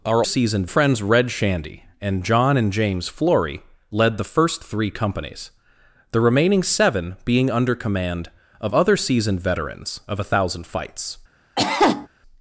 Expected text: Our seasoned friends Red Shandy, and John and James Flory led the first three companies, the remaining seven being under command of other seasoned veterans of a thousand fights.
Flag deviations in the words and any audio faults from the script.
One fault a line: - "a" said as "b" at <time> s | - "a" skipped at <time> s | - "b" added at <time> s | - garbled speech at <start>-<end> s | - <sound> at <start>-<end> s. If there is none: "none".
- cough at 11.6-12.1 s